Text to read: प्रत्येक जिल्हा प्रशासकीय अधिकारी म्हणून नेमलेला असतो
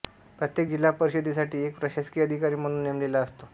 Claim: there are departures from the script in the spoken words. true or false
true